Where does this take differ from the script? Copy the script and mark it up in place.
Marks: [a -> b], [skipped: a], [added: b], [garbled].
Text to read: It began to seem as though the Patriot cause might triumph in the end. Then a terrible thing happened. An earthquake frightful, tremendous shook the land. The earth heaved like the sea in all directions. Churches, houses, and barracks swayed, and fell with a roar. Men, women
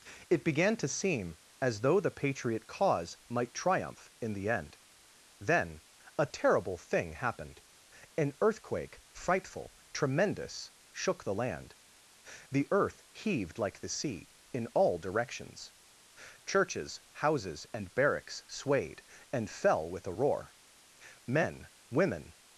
It began to seem as though the Patriot cause might triumph in the end. Then a terrible thing happened. An earthquake frightful, tremendous shook the land. The earth heaved like the sea in all directions. Churches, houses, and barracks swayed, and fell with a roar. Men, women